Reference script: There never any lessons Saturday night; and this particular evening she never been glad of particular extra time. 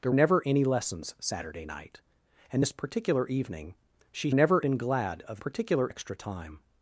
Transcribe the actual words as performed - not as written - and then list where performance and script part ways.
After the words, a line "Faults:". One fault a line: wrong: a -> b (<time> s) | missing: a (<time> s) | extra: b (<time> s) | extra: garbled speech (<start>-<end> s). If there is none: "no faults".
There never any lessons Saturday night; and this particular evening she never been glad of particular extra time.
Faults:
no faults